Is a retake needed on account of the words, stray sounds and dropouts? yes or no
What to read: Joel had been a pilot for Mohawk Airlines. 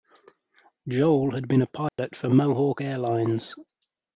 yes